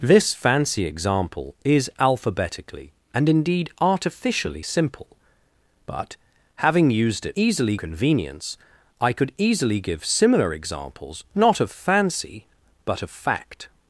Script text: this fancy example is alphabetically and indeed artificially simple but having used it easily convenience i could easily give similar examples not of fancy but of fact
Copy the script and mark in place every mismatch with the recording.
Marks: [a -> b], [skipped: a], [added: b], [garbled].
this fancy example is alphabetically and indeed artificially simple but having used it easily convenience i could easily give similar examples not of fancy but of fact